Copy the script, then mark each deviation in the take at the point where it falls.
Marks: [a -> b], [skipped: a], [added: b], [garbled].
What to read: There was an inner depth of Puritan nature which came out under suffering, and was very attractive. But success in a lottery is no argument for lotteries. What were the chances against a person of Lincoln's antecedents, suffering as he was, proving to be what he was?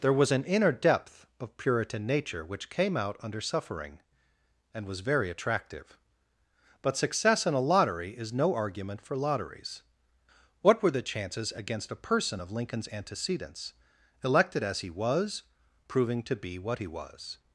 There was an inner depth of Puritan nature which came out under suffering, and was very attractive. But success in a lottery is no argument for lotteries. What were the chances against a person of Lincoln's antecedents, [suffering -> elected] as he was, proving to be what he was?